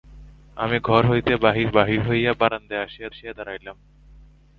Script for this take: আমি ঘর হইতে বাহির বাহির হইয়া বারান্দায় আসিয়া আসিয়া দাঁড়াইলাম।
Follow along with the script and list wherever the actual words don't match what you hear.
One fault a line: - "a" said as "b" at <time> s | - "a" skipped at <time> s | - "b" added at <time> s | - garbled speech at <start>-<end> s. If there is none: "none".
none